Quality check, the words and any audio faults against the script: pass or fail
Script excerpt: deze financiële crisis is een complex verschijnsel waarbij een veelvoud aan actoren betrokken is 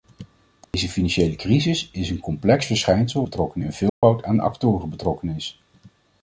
fail